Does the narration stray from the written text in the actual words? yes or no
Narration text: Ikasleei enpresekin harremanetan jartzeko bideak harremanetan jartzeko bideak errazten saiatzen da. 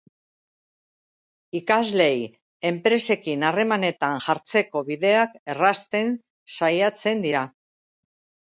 yes